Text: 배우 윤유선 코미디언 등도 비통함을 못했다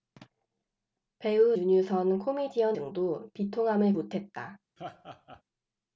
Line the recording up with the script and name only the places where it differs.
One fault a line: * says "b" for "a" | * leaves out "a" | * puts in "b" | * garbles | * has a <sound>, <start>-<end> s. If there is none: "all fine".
* has a laugh, 4.8-5.4 s